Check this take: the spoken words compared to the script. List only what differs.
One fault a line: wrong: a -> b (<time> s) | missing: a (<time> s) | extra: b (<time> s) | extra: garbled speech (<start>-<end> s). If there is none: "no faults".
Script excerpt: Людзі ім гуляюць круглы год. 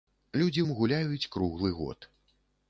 no faults